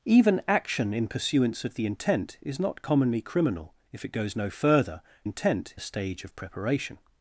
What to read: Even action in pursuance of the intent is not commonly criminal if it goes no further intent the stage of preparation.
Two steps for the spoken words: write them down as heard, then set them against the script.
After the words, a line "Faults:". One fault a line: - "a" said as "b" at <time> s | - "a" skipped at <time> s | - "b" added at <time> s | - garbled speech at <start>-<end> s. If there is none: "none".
Even action in pursuance of the intent is not commonly criminal if it goes no further intent the stage of preparation.
Faults:
none